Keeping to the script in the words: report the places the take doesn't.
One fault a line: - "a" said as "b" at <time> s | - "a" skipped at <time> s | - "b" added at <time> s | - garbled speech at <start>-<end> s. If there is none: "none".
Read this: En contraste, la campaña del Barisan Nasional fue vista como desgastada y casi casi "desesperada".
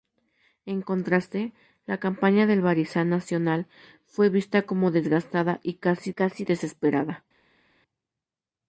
none